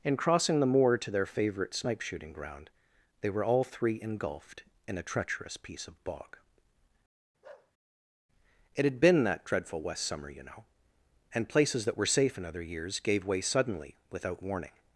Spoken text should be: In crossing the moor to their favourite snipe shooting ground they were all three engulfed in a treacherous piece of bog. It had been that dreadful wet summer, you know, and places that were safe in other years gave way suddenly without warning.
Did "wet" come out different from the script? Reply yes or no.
yes